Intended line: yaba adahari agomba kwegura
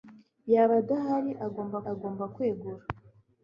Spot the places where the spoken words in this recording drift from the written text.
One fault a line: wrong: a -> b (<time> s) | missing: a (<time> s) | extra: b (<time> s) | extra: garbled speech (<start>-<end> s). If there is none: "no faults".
extra: agomba (1.9 s)